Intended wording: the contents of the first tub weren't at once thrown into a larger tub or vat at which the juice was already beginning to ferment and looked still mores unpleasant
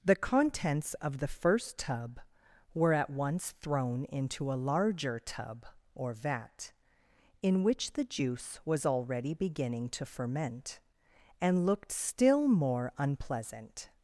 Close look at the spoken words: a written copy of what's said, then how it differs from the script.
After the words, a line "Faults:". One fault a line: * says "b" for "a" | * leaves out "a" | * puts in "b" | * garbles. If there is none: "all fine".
the contents of the first tub were at once thrown into a larger tub or vat in which the juice was already beginning to ferment and looked still more unpleasant
Faults:
* says "were" for "weren't"
* says "in" for "at"
* says "more" for "mores"